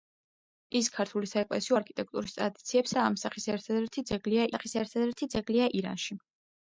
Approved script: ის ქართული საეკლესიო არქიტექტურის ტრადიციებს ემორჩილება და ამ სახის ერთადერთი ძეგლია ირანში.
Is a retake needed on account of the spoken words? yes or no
yes